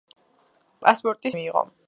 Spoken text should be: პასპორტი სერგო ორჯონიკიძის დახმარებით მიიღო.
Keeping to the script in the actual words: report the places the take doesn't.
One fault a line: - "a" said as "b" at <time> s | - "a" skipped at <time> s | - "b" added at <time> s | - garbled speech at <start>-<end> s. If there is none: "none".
- "სერგო ორჯონიკიძის დახმარებით" skipped at 1.3 s